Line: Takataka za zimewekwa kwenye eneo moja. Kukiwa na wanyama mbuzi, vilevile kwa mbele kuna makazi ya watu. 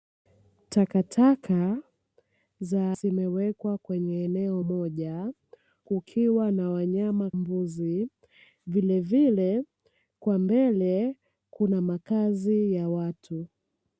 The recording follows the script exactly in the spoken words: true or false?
true